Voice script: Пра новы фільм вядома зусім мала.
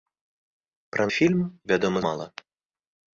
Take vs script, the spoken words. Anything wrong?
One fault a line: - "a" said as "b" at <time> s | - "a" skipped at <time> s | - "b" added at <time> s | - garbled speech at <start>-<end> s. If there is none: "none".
- "новы" skipped at 1.0 s
- "зусім" skipped at 2.0 s